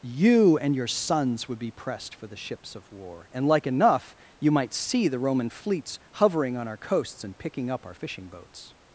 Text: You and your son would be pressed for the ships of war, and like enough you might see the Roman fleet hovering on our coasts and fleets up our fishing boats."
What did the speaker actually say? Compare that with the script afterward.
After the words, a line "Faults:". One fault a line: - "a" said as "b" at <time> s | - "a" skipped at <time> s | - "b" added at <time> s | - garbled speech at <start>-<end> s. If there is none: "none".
You and your sons would be pressed for the ships of war, and like enough you might see the Roman fleets hovering on our coasts and picking up our fishing boats."
Faults:
- "son" said as "sons" at 0.9 s
- "fleet" said as "fleets" at 5.5 s
- "fleets" said as "picking" at 7.4 s